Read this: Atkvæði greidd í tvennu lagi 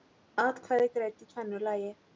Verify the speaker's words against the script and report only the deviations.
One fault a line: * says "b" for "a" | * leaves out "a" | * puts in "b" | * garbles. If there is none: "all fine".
all fine